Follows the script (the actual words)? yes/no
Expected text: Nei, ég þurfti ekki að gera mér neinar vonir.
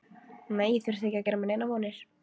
yes